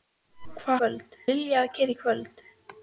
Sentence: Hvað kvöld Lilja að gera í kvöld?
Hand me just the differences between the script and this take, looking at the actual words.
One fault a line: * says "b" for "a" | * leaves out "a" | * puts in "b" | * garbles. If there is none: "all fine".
all fine